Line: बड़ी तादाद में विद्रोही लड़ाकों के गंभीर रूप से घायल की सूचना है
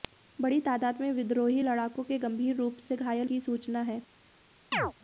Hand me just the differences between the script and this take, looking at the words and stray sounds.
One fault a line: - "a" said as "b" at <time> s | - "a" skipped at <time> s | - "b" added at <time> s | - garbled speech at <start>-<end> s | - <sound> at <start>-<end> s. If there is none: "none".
- chirp at 4.7-4.9 s